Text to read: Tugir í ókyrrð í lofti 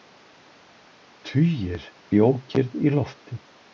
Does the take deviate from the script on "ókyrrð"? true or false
false